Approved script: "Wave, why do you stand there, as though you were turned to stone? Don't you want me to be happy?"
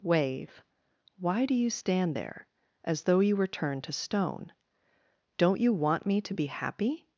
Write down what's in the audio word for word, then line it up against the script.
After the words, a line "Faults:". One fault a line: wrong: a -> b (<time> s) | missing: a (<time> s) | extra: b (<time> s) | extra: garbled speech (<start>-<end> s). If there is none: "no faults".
"Wave, why do you stand there, as though you were turned to stone? Don't you want me to be happy?"
Faults:
no faults